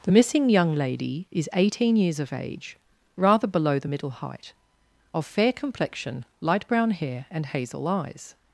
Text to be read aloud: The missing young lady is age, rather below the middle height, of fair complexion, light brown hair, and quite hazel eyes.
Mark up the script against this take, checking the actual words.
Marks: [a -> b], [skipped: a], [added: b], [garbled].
The missing young lady is [added: eighteen years of] age, rather below the middle height, of fair complexion, light brown hair, and [skipped: quite] hazel eyes.